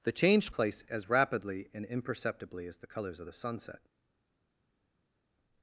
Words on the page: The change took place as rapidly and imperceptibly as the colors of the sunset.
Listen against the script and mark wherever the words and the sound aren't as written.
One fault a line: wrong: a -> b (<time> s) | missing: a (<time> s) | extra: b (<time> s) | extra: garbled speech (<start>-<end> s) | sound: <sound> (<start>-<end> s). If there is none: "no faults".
missing: took (0.5 s)